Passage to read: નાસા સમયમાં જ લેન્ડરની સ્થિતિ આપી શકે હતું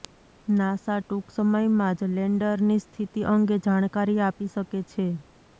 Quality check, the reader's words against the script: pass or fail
fail